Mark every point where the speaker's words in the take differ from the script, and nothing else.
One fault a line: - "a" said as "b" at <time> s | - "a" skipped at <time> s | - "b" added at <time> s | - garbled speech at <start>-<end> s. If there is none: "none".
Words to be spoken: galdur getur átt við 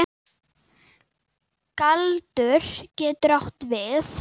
none